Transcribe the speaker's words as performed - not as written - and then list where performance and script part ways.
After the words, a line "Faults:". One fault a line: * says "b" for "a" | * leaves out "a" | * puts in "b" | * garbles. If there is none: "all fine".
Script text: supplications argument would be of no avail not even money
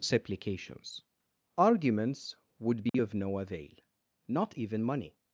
supplications arguments would be of no avail not even money
Faults:
* says "arguments" for "argument"